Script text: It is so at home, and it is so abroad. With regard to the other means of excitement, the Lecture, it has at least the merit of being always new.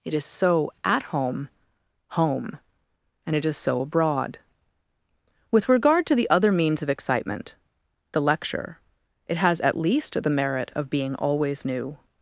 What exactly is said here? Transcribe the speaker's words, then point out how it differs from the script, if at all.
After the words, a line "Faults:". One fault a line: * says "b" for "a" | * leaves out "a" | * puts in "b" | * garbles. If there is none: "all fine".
It is so at home home, and it is so abroad. With regard to the other means of excitement, the Lecture, it has at least the merit of being always new.
Faults:
* puts in "home"